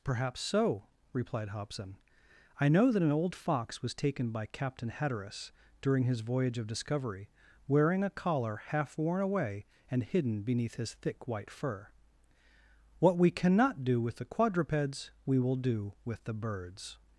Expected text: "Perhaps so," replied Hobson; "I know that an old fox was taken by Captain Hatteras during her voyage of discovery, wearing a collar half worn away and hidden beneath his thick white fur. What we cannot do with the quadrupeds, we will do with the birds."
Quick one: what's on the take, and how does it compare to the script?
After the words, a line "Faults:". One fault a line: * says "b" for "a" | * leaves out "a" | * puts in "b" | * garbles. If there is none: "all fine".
"Perhaps so," replied Hobson; "I know that an old fox was taken by Captain Hatteras during his voyage of discovery, wearing a collar half worn away and hidden beneath his thick white fur. What we cannot do with the quadrupeds, we will do with the birds."
Faults:
* says "his" for "her"